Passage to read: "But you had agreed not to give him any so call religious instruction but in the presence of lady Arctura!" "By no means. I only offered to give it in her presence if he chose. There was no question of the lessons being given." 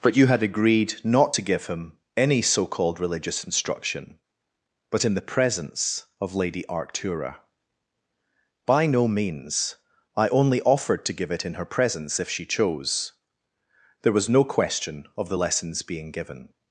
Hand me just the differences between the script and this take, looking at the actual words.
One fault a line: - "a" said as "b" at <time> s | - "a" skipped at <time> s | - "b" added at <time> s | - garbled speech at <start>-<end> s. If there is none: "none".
- "call" said as "called" at 2.6 s
- "he" said as "she" at 12.3 s